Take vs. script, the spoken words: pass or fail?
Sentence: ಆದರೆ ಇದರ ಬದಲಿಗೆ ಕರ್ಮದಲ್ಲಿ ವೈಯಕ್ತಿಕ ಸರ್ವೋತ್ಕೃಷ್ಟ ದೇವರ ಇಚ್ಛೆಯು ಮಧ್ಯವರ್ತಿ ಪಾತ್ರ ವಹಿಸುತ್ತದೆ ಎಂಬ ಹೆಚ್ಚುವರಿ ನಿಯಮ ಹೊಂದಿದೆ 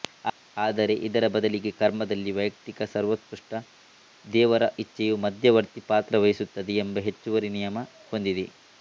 pass